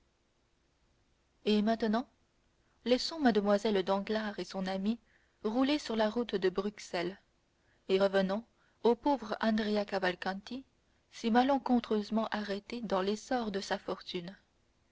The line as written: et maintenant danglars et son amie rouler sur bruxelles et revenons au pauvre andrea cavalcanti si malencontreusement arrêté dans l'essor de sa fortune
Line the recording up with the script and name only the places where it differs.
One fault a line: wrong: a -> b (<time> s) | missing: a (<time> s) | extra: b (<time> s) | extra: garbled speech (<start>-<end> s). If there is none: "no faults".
extra: laissons mlle (2.9 s)
extra: la route de (6.0 s)